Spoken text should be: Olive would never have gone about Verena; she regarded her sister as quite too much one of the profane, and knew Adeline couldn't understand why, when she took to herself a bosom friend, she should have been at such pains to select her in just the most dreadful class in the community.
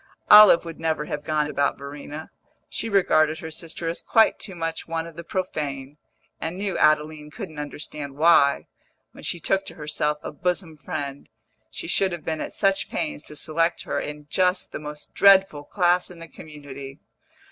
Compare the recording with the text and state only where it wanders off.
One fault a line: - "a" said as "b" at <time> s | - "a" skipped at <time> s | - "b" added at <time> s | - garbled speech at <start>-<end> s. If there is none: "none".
none